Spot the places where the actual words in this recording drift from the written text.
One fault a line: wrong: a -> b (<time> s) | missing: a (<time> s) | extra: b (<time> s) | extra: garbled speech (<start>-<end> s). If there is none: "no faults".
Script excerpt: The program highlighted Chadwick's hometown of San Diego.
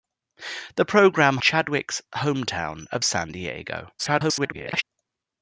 missing: highlighted (1.4 s)
extra: garbled speech (4.0-4.8 s)